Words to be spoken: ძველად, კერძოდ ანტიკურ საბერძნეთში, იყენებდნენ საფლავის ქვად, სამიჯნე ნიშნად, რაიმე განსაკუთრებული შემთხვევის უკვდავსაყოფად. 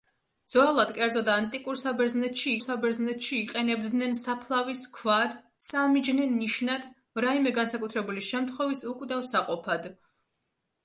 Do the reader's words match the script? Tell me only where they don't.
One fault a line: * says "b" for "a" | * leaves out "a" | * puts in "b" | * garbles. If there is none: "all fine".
* puts in "საბერძნეთში"